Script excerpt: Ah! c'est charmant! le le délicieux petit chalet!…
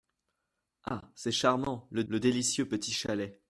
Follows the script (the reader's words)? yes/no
yes